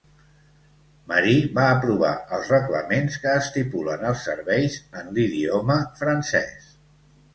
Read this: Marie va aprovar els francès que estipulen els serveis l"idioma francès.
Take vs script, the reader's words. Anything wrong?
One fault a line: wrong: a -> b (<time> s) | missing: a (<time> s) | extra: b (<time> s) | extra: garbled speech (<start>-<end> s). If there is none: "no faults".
wrong: francès -> reglaments (2.5 s)
extra: en (5.0 s)